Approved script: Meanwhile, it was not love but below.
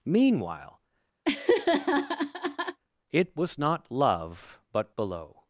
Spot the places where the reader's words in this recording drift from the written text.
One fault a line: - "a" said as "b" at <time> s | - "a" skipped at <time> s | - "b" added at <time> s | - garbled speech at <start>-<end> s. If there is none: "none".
none